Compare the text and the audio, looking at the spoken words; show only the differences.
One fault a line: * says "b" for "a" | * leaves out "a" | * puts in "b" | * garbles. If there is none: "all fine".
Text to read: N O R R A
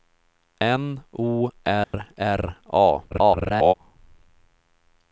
* garbles